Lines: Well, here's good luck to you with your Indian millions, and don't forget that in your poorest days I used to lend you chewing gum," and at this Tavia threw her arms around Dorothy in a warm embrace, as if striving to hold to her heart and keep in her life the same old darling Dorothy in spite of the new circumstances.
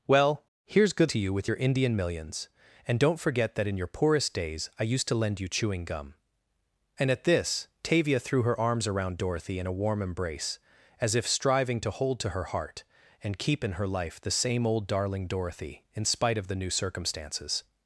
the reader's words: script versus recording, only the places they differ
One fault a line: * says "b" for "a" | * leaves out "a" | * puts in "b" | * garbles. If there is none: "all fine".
* leaves out "luck"